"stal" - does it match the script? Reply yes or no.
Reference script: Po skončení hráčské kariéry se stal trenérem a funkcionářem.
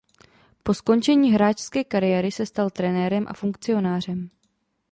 yes